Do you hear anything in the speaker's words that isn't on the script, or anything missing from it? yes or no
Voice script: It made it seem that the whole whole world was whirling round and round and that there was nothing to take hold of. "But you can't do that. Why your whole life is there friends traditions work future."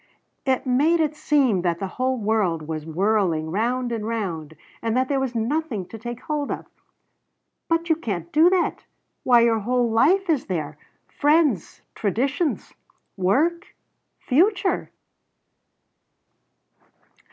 yes